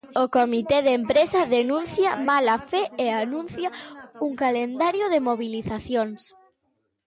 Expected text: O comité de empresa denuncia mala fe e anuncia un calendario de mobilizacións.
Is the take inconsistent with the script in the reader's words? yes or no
no